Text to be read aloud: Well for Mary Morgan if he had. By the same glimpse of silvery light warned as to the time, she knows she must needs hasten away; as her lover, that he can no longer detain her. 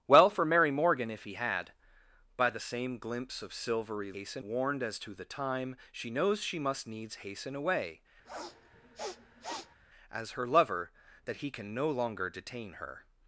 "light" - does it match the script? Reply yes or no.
no